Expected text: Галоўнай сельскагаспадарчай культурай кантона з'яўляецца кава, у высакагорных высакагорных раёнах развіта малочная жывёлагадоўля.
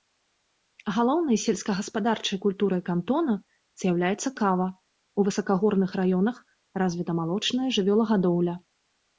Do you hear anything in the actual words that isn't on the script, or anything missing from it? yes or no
yes